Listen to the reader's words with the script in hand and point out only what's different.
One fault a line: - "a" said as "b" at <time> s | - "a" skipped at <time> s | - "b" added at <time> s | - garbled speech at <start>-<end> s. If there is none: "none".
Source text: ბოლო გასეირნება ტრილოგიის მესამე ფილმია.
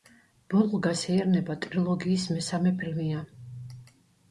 none